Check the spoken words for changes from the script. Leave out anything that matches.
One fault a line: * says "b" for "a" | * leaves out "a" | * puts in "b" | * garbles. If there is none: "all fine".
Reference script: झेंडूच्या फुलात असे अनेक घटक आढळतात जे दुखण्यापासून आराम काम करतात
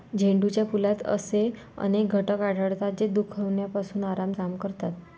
all fine